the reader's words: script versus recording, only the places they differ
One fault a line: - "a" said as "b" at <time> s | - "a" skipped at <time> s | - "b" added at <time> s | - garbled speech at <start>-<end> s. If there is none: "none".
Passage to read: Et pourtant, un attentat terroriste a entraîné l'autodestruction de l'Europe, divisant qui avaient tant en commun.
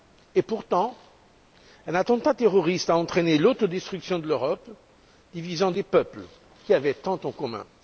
- "des peuples" added at 5.7 s